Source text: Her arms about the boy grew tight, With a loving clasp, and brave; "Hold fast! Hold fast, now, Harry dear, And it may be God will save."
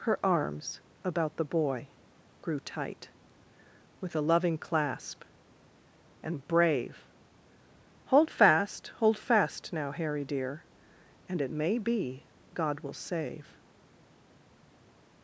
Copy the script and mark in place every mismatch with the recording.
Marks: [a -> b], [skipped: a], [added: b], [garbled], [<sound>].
Her arms about the boy grew tight, With a loving clasp, and brave; "Hold fast! Hold fast, now, Harry dear, And it may be God will save."